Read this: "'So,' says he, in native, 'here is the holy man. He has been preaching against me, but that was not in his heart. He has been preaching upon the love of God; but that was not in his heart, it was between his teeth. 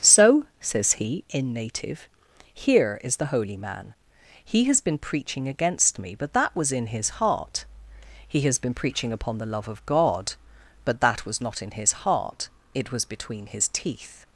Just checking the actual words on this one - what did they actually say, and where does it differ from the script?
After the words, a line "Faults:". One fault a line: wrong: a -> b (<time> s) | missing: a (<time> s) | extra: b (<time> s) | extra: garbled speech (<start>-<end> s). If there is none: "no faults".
"'So,' says he, in native, 'here is the holy man. He has been preaching against me, but that was in his heart. He has been preaching upon the love of God; but that was not in his heart, it was between his teeth.
Faults:
missing: not (6.7 s)